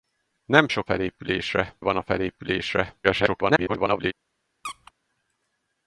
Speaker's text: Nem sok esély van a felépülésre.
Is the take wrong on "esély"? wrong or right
wrong